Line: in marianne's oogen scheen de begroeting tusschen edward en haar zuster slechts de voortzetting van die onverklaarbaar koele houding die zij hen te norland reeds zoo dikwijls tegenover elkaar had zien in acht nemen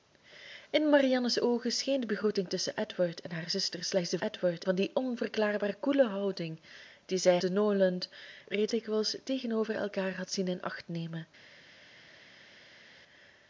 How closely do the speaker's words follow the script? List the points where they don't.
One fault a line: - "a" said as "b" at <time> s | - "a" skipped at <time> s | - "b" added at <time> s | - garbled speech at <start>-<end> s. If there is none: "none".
- "voortzetting" said as "edward" at 4.2 s
- "hen" skipped at 7.4 s
- "zoo" skipped at 8.7 s